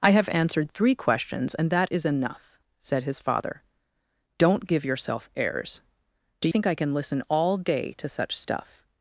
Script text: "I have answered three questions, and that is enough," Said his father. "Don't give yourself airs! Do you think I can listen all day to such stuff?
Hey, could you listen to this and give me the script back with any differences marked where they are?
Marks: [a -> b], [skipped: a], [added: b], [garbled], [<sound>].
"I have answered three questions, and that is enough," Said his father. "Don't give yourself airs! Do [skipped: you] think I can listen all day to such stuff?